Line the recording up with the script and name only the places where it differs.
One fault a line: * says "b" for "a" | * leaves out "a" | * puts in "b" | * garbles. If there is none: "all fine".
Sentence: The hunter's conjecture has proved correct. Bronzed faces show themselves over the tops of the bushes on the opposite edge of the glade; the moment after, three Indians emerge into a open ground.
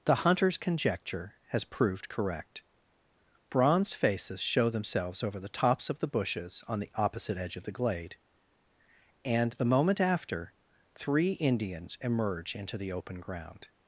* puts in "and"
* says "the" for "a"